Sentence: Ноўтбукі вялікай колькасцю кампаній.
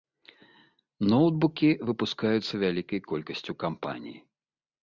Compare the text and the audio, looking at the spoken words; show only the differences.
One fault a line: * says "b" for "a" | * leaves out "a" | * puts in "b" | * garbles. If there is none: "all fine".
* puts in "выпускаюцца"